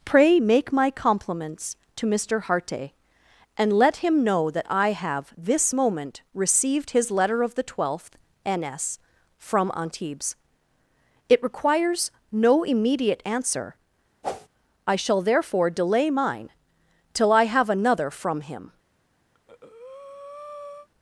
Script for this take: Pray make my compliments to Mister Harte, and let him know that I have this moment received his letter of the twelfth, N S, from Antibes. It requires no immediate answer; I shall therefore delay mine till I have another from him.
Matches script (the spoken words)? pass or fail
pass